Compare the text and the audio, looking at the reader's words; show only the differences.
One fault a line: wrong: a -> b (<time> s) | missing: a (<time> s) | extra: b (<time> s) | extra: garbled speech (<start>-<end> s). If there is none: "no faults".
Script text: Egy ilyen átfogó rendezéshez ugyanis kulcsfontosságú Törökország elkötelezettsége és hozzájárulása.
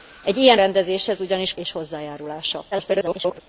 missing: átfogó (0.6 s)
missing: kulcsfontosságú Törökország elkötelezettsége (1.5 s)
extra: garbled speech (2.7-3.4 s)